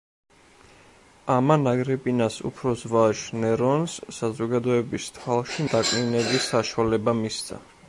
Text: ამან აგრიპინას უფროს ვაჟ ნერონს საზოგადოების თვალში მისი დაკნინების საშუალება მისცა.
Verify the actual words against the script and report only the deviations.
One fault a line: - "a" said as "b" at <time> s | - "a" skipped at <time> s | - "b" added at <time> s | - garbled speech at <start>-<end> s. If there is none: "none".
- "მისი" skipped at 5.7 s